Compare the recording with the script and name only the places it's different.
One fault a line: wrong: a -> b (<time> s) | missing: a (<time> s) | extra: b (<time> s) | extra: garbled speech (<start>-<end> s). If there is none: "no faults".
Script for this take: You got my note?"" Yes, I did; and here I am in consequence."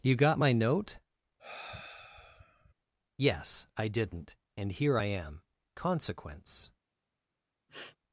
wrong: did -> didn't (3.9 s)
missing: in (5.4 s)